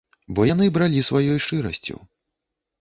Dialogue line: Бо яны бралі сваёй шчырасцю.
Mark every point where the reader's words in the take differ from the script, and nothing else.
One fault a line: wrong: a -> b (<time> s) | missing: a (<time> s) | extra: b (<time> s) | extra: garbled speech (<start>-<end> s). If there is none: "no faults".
no faults